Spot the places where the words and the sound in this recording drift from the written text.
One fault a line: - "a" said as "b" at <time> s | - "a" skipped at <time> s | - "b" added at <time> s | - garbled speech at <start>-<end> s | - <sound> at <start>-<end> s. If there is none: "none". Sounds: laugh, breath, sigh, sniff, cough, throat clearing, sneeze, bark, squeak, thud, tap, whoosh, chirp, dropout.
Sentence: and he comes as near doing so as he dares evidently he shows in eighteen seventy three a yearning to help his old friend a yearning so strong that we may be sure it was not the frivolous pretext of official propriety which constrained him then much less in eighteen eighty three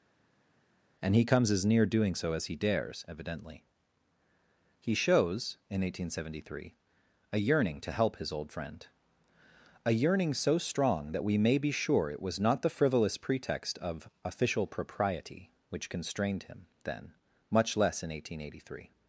none